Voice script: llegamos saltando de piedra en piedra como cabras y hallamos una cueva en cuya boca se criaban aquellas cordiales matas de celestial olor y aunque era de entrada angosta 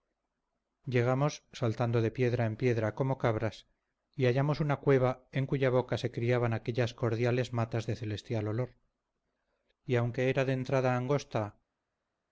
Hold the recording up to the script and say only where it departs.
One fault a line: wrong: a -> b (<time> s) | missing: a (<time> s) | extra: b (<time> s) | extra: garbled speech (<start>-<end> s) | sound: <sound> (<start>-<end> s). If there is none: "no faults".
no faults